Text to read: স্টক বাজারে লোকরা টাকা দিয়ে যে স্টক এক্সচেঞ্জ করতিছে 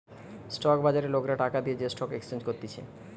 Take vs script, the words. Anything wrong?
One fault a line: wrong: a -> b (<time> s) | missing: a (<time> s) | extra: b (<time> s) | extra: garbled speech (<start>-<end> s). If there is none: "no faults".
no faults